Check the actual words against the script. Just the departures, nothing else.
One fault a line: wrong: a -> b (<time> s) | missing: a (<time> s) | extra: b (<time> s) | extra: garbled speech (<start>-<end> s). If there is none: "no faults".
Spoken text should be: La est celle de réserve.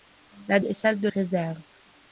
no faults